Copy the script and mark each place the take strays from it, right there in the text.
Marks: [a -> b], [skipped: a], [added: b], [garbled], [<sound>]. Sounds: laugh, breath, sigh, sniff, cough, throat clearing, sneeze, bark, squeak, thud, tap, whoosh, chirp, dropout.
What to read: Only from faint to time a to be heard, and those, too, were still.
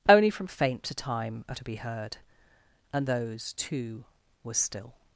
Only from faint to time a to be heard, and those, too, were still.